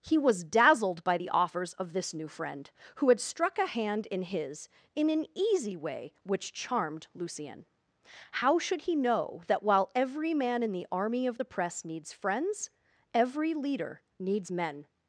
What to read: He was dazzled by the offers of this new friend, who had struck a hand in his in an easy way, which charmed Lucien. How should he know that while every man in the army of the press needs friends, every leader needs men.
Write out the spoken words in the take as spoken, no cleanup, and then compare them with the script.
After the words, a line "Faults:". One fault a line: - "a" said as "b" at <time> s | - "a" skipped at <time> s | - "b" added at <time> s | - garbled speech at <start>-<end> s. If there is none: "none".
He was dazzled by the offers of this new friend, who had struck a hand in his in an easy way, which charmed Lucien. How should he know that while every man in the army of the press needs friends, every leader needs men.
Faults:
none